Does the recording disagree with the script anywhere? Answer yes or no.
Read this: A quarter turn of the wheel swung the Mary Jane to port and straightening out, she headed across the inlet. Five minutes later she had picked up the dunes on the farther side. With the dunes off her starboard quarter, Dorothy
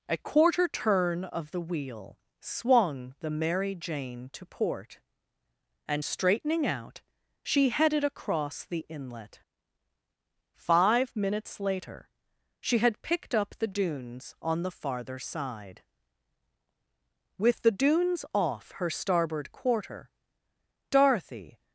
no